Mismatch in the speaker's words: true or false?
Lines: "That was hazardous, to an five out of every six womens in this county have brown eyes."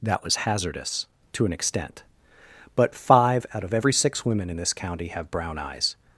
true